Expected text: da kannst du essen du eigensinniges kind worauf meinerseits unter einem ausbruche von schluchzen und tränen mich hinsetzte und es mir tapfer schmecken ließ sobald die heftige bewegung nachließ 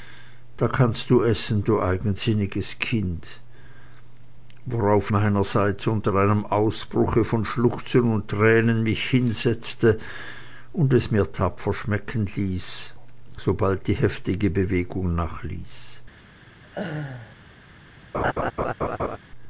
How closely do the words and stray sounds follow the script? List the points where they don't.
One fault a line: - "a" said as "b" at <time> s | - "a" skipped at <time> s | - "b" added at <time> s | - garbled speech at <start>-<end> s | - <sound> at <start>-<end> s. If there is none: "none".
- laugh at 16.6-17.4 s
- laugh at 18.1-19.2 s